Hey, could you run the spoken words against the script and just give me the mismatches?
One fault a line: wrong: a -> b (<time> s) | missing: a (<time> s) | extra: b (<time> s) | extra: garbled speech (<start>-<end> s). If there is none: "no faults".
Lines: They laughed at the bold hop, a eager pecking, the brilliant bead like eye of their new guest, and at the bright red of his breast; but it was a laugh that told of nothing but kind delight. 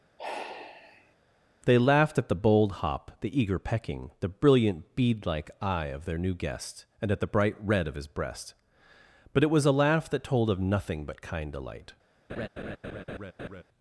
wrong: a -> the (3.2 s)